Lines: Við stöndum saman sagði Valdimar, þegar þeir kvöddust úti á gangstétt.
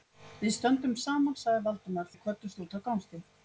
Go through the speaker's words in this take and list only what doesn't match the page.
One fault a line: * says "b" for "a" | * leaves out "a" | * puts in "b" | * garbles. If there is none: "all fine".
* leaves out "þegar"